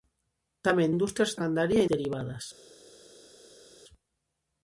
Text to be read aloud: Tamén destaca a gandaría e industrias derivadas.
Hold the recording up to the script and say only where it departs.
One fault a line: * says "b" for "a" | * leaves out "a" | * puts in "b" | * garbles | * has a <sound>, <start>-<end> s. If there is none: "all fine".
* says "industrias" for "destaca"
* leaves out "industrias"